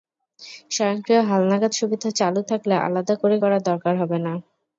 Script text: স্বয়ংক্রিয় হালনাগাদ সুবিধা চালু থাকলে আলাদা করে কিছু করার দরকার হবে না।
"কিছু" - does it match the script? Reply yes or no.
no